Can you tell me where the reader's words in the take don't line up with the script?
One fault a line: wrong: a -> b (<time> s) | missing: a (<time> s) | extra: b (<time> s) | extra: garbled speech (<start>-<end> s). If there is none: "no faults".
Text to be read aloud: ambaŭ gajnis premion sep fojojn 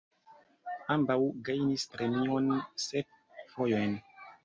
no faults